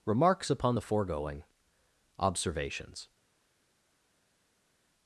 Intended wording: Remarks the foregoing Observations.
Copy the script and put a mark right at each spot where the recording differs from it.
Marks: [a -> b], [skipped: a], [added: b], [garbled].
Remarks [added: upon] the foregoing Observations.